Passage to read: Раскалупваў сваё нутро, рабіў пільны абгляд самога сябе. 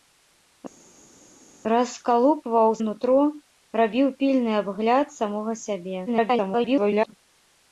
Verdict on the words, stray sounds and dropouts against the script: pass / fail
fail